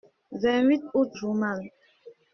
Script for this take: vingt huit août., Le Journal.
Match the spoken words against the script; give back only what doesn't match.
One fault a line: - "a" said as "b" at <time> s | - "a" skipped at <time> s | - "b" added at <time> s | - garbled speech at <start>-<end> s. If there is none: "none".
- "Le" skipped at 1.1 s